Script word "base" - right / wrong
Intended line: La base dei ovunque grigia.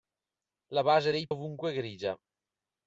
right